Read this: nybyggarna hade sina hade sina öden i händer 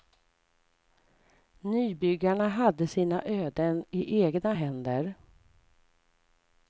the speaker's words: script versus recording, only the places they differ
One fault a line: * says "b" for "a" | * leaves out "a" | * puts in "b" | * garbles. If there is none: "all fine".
* leaves out "hade sina"
* puts in "egna"